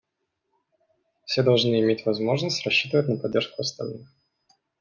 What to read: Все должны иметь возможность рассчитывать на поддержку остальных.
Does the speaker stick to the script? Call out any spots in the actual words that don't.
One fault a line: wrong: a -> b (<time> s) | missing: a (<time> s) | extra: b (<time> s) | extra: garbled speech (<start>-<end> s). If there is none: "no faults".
no faults